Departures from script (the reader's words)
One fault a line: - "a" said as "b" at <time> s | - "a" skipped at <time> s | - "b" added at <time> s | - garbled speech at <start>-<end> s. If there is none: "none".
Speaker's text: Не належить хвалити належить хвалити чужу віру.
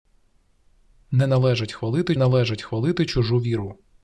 none